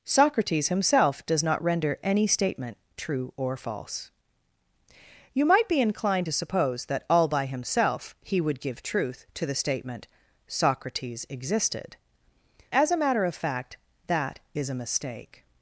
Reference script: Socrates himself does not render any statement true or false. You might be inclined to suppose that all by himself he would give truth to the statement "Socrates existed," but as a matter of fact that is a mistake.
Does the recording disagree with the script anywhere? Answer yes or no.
yes